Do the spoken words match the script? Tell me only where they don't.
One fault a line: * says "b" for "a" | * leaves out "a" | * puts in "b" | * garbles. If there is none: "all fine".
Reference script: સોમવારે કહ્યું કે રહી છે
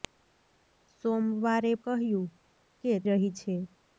all fine